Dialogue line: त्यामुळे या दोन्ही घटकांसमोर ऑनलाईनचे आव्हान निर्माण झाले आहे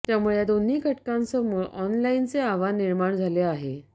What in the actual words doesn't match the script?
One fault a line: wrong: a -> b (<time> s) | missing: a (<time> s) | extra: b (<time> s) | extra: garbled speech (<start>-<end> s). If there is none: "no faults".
no faults